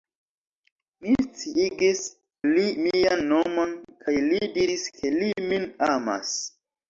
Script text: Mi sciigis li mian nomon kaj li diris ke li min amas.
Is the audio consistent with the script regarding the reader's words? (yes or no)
yes